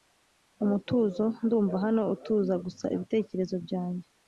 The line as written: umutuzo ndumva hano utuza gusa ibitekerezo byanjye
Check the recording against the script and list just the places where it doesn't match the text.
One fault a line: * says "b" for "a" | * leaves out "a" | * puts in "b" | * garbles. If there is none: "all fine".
all fine